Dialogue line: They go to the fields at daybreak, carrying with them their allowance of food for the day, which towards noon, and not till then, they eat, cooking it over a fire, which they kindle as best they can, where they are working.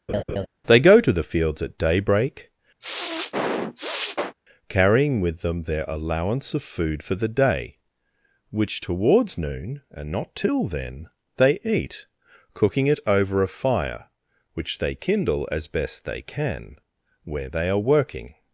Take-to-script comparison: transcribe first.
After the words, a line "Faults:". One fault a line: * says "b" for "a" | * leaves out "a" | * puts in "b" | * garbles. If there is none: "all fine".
They go to the fields at daybreak, carrying with them their allowance of food for the day, which towards noon, and not till then, they eat, cooking it over a fire, which they kindle as best they can, where they are working.
Faults:
all fine